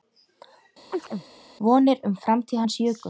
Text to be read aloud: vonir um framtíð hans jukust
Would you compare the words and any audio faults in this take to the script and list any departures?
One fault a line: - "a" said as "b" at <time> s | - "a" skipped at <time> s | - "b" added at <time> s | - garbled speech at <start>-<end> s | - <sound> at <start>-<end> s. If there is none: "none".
- chirp at 0.9-1.3 s